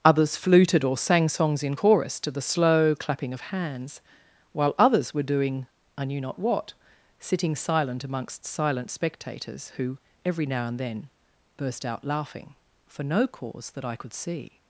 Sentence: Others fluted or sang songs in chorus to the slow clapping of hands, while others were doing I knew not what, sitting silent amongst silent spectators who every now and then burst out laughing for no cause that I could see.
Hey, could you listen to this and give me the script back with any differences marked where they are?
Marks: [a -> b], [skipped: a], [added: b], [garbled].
Others fluted or sang songs in chorus to the slow clapping of hands, while others were doing I knew not what, sitting silent amongst silent spectators who every now and then burst out laughing for no cause that I could see.